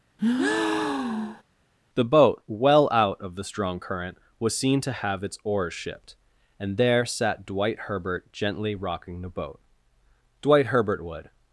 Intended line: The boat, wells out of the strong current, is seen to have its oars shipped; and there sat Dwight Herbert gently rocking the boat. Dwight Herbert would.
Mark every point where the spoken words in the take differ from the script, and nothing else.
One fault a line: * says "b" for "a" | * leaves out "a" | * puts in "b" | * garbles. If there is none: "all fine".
* says "well" for "wells"
* says "was" for "is"